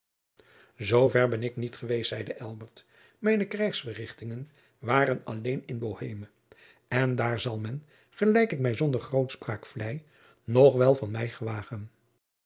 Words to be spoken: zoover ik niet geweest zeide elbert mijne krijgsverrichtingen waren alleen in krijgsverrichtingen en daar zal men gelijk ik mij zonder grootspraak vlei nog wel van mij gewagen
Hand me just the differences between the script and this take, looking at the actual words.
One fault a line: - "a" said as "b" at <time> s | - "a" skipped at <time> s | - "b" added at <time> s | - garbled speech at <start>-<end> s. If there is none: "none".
- "ben" added at 1.3 s
- "krijgsverrichtingen" said as "boheme" at 5.8 s